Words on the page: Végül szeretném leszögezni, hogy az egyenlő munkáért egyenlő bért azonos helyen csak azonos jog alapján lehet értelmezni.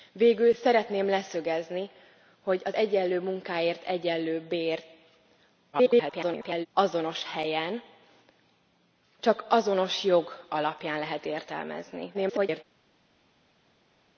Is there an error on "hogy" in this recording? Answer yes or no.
no